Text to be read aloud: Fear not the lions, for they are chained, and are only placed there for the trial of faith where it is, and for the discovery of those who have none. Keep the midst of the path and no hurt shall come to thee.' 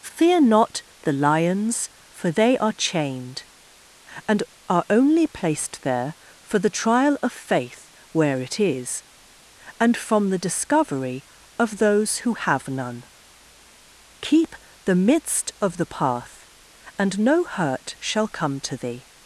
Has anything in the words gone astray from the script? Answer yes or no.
yes